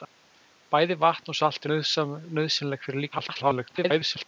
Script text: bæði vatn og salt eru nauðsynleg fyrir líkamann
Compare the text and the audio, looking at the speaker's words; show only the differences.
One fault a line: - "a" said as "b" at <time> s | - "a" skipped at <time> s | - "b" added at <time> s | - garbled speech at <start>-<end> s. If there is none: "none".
- "eru" skipped at 1.7 s
- garbled speech at 3.1-4.3 s